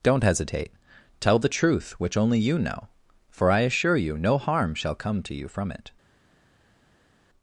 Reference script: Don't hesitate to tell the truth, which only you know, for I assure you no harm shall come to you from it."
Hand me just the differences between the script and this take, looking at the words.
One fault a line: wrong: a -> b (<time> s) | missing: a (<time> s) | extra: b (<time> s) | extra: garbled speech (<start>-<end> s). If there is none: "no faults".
missing: to (0.7 s)